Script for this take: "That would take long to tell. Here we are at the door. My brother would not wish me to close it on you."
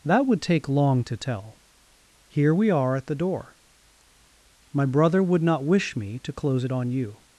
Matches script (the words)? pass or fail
pass